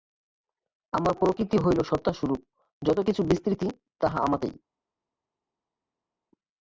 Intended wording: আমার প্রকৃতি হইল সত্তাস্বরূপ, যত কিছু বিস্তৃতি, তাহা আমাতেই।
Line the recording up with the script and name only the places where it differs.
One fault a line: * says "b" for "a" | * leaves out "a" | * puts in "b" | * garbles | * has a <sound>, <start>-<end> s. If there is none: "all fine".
all fine